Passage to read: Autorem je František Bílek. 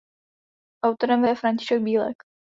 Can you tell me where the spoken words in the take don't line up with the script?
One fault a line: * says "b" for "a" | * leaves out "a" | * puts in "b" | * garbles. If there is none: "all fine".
all fine